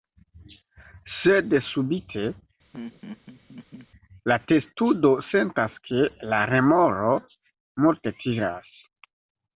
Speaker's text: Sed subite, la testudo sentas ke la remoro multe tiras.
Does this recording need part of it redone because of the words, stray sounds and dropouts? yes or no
yes